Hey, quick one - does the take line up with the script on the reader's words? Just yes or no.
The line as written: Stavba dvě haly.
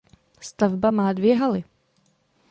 no